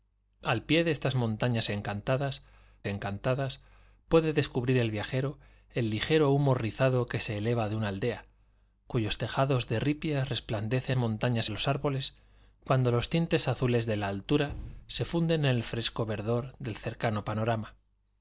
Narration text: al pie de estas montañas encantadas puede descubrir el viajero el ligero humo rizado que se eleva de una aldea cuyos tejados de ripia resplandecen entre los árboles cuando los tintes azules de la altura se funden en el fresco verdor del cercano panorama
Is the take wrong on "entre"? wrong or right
wrong